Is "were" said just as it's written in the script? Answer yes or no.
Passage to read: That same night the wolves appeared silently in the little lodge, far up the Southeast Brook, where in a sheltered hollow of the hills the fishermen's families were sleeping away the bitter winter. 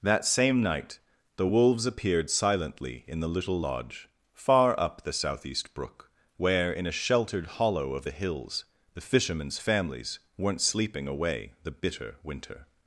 no